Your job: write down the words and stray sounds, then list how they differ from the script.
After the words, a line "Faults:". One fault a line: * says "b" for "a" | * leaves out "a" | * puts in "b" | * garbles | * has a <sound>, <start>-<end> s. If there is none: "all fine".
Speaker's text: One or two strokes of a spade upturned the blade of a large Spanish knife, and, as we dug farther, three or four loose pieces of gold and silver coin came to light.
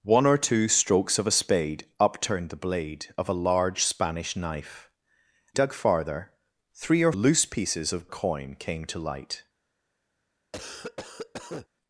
One or two strokes of a spade upturned the blade of a large Spanish knife, dug farther, three or loose pieces of coin came to light.
Faults:
* leaves out "and as we"
* leaves out "four"
* leaves out "gold and silver"
* has a cough, 10.5-11.7 s